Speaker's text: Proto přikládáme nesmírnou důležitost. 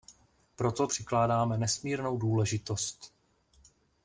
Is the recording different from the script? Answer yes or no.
no